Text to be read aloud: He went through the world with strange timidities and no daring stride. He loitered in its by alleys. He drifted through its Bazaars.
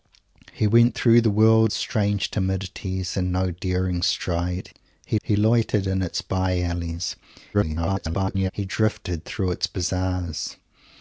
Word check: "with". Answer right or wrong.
wrong